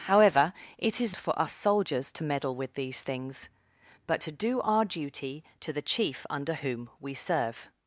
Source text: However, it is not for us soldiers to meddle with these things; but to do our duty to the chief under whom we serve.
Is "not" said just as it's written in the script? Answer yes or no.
no